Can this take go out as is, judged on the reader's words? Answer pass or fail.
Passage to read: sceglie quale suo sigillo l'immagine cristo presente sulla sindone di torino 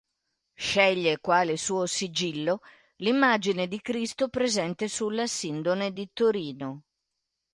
fail